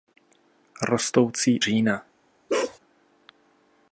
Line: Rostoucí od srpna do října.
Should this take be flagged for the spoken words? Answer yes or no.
yes